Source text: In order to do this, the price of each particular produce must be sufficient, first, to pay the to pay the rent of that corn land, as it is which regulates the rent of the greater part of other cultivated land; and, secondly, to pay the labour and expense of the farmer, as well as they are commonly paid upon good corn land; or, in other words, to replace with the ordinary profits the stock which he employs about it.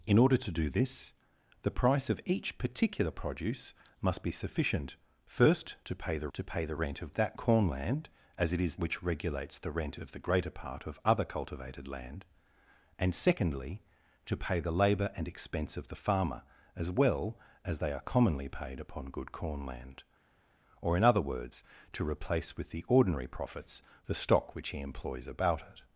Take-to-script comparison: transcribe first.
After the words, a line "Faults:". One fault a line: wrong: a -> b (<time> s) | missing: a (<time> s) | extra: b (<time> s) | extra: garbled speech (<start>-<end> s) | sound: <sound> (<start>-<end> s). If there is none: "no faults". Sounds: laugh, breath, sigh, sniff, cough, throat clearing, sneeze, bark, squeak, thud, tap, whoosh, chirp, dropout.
In order to do this, the price of each particular produce must be sufficient, first, to pay the to pay the rent of that corn land, as it is which regulates the rent of the greater part of other cultivated land; and, secondly, to pay the labour and expense of the farmer, as well as they are commonly paid upon good corn land; or, in other words, to replace with the ordinary profits the stock which he employs about it.
Faults:
no faults